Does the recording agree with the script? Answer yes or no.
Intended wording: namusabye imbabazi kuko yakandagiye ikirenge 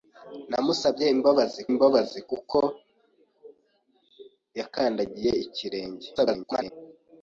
no